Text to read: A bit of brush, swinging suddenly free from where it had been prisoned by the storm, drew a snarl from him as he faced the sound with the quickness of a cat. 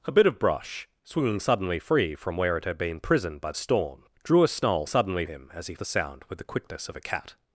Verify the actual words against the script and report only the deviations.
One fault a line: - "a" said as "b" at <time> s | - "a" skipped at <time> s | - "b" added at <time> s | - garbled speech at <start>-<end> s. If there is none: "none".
- "the" skipped at 3.5 s
- "from" said as "suddenly" at 4.9 s
- "faced" skipped at 5.7 s